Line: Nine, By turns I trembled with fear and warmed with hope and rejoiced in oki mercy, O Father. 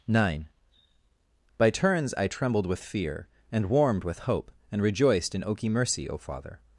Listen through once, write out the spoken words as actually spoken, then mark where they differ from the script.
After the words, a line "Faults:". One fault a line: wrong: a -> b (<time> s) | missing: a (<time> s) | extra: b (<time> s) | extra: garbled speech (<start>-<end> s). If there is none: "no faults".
Nine, By turns I trembled with fear and warmed with hope and rejoiced in oki mercy, O Father.
Faults:
no faults